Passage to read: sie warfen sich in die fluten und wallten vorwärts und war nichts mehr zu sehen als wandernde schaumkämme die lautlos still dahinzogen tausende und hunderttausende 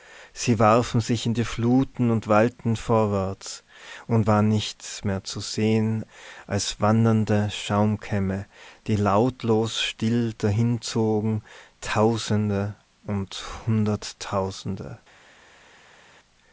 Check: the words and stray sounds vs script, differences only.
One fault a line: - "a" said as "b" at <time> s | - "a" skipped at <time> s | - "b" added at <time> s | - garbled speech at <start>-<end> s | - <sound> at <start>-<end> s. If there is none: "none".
none